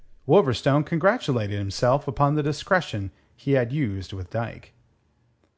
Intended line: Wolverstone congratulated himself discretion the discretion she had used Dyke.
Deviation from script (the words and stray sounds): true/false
true